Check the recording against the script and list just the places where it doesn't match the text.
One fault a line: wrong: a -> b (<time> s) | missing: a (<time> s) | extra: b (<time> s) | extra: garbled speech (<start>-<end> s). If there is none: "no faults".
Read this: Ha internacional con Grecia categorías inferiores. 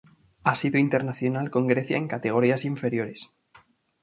extra: sido (0.6 s)
extra: en (1.9 s)